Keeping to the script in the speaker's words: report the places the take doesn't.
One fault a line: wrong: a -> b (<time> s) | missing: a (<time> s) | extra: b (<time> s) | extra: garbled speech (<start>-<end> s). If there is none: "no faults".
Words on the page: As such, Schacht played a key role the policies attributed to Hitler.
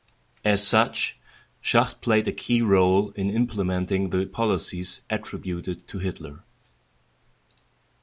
extra: in implementing (3.1 s)